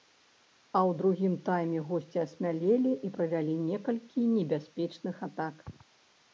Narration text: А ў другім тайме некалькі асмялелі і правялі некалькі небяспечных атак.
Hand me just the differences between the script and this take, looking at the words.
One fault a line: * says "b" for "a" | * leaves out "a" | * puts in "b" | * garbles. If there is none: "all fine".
* says "госці" for "некалькі"